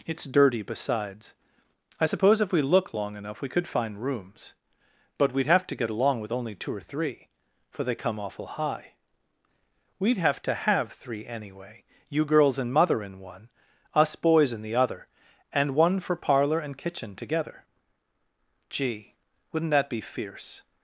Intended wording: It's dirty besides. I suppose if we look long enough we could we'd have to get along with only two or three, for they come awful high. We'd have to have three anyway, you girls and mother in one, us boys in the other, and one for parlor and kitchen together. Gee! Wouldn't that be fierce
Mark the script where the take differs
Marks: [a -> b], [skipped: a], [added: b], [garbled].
It's dirty besides. I suppose if we look long enough we could [added: find rooms but] we'd have to get along with only two or three, for they come awful high. We'd have to have three anyway, you girls and mother in one, us boys in the other, and one for parlor and kitchen together. Gee! Wouldn't that be fierce